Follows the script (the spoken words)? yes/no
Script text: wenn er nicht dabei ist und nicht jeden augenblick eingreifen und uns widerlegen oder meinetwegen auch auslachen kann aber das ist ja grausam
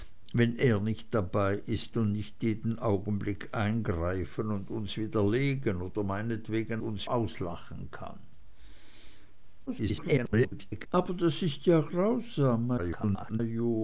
no